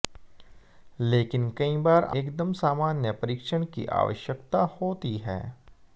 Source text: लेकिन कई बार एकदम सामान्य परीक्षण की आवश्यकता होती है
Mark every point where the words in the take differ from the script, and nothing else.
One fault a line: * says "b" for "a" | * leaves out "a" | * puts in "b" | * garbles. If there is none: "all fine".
all fine